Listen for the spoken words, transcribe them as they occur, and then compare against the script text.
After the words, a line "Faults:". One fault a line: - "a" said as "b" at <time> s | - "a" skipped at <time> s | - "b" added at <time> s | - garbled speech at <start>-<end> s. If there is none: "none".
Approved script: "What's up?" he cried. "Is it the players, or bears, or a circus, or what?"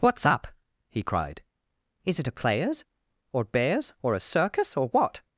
"What's up?" he cried. "Is it a players, or bears, or a circus, or what?"
Faults:
- "the" said as "a" at 2.3 s